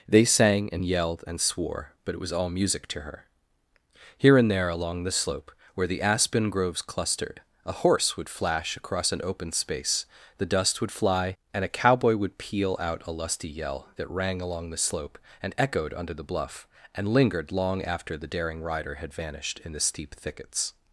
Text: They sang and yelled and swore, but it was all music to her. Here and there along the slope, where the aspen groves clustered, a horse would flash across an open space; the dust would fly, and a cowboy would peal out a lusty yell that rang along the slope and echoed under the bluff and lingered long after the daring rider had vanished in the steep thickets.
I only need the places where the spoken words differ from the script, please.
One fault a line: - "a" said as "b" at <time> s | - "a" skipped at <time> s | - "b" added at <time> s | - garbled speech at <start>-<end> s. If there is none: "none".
none